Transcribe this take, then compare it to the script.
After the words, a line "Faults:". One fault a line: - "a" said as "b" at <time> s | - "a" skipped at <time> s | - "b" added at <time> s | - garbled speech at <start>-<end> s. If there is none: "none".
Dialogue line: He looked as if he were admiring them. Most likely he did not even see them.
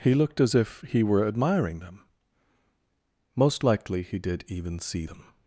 He looked as if he were admiring them. Most likely he did even see them.
Faults:
- "not" skipped at 4.4 s